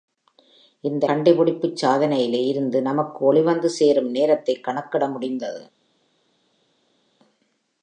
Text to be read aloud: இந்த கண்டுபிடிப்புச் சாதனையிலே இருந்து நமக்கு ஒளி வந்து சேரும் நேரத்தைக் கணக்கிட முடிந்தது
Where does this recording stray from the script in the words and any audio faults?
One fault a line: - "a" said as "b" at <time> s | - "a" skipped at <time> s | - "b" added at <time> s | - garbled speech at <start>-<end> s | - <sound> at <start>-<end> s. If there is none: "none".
none